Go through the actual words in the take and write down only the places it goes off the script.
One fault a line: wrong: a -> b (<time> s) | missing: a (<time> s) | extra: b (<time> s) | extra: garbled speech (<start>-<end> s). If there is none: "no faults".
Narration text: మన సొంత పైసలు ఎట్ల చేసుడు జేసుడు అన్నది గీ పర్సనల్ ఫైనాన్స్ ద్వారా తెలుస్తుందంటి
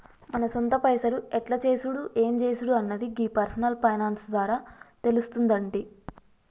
extra: ఎం (2.2 s)